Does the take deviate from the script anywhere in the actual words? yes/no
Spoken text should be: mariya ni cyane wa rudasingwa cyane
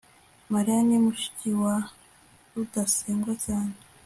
yes